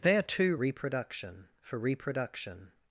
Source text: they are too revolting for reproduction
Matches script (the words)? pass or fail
fail